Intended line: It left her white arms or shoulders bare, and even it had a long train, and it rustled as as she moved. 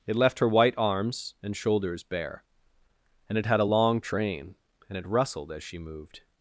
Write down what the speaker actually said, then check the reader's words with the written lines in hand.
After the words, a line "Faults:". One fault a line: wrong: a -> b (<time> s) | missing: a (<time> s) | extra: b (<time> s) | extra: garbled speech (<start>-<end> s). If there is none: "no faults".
It left her white arms and shoulders bare, and it had a long train, and it rustled as she moved.
Faults:
wrong: or -> and (1.4 s)
missing: even (3.4 s)
missing: as (5.6 s)